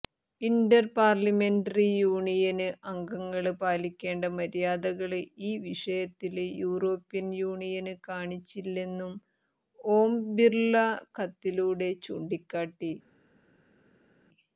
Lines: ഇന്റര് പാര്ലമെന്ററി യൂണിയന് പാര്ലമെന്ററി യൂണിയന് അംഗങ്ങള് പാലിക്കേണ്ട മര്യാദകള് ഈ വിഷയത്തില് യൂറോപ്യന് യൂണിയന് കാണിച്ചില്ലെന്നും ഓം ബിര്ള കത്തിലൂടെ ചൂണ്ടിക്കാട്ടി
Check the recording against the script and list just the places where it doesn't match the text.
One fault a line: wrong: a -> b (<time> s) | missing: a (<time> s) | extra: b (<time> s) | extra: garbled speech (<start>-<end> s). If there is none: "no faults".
missing: പാര്ലമെന്ററി യൂണിയന് (2.7 s)